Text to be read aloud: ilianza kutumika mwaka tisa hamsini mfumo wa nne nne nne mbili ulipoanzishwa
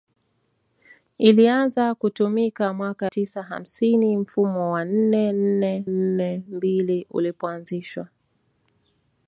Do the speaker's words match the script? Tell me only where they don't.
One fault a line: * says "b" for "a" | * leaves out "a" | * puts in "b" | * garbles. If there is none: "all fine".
all fine